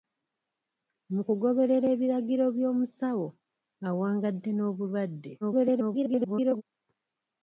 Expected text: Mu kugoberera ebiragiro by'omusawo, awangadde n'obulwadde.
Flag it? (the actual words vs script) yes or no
yes